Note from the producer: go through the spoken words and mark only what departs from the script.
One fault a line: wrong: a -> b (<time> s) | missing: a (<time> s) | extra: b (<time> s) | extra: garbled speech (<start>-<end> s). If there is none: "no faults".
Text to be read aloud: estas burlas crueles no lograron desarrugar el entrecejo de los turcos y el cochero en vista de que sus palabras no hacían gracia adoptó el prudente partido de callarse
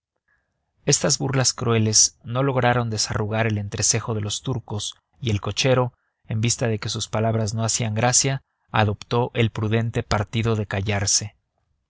no faults